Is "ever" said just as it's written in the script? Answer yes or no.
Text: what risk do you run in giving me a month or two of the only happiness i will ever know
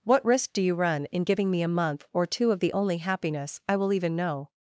no